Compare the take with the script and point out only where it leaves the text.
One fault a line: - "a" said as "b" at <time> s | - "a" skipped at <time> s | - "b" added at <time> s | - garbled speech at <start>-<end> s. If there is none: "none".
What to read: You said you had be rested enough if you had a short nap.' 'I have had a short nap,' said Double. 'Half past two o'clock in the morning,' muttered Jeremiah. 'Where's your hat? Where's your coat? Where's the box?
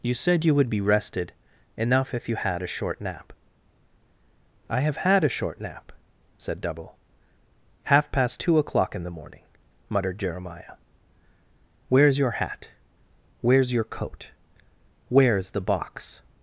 - "had" said as "would" at 0.6 s